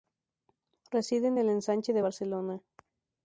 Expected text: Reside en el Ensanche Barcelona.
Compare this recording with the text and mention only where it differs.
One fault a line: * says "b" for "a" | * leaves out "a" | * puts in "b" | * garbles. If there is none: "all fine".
* puts in "de"